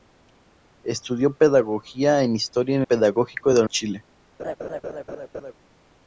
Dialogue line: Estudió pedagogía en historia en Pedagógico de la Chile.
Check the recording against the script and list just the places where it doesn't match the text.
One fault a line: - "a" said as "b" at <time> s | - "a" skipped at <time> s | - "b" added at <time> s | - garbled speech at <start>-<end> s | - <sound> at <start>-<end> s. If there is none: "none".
- laugh at 4.4-5.5 s